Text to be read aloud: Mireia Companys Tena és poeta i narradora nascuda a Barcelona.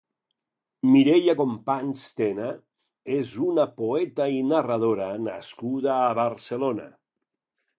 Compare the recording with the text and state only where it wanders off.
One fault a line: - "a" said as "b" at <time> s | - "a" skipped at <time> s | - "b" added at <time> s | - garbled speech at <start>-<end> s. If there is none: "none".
- "una" added at 3.5 s